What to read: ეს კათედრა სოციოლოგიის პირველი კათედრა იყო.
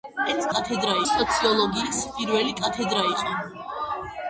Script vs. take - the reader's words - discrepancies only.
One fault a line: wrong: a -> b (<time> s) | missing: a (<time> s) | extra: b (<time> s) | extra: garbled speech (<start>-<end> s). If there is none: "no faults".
no faults